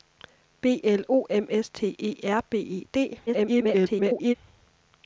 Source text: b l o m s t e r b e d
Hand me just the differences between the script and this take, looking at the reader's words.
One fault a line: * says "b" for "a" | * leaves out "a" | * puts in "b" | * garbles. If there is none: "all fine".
* garbles